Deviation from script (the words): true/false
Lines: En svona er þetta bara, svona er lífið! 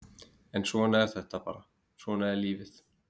false